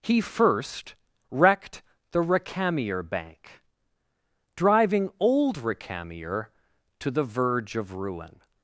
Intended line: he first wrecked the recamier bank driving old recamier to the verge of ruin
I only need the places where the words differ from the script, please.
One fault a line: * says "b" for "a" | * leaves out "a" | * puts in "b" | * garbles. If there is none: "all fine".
all fine